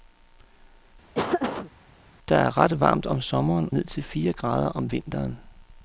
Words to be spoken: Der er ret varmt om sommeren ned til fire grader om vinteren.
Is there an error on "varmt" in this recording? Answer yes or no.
no